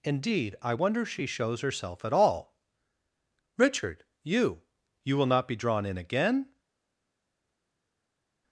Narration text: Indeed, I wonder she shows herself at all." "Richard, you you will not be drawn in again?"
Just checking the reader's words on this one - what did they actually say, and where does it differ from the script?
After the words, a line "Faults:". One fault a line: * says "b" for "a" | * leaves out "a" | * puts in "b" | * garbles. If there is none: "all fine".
Indeed, I wonder she shows herself at all." "Richard, you you will not be drawn in again?"
Faults:
all fine